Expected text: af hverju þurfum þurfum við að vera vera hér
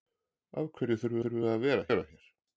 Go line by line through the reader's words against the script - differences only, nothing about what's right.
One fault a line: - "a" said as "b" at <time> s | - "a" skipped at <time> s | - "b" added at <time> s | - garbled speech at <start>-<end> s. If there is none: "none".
none